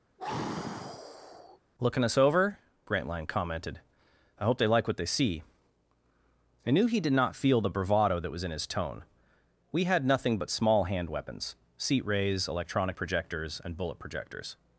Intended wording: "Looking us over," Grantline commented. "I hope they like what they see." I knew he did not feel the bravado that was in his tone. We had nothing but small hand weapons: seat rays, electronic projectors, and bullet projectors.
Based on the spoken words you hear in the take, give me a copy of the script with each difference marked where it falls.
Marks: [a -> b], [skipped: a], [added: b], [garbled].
"Looking us over," Grantline commented. "I hope they like what they see." I knew he did not feel the bravado that was in his tone. We had nothing but small hand weapons: seat rays, electronic projectors, and bullet projectors.